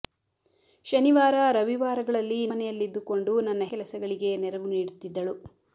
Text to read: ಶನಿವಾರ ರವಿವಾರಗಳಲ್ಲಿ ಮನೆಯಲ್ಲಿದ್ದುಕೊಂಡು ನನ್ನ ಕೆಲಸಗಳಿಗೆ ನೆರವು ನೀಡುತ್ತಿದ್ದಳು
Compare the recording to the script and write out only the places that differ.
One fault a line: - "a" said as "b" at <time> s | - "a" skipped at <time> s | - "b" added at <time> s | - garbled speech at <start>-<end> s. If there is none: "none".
none